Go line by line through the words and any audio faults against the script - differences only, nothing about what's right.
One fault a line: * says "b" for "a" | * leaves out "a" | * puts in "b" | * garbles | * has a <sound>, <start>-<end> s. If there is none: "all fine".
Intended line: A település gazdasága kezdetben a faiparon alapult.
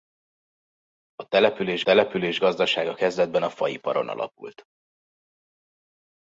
* puts in "település"